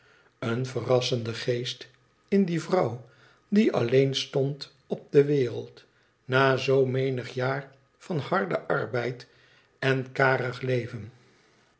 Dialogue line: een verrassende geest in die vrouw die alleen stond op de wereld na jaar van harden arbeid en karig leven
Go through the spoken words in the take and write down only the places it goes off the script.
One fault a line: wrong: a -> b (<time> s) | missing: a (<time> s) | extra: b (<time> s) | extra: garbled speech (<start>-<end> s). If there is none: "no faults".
extra: zoo menig (6.6 s)